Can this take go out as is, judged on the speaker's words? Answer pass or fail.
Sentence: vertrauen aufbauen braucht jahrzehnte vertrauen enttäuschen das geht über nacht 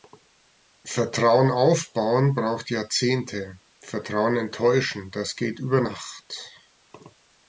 pass